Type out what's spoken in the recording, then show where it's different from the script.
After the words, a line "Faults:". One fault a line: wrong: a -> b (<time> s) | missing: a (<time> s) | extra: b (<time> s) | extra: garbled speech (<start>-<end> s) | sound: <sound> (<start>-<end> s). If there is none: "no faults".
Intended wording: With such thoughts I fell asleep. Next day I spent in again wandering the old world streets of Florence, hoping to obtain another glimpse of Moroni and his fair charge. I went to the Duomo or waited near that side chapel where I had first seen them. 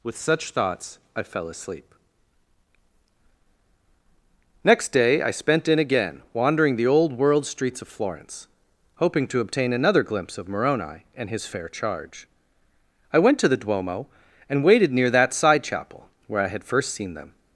With such thoughts I fell asleep. Next day I spent in again wandering the old world streets of Florence, hoping to obtain another glimpse of Moroni and his fair charge. I went to the Duomo and waited near that side chapel where I had first seen them.
Faults:
wrong: or -> and (14.5 s)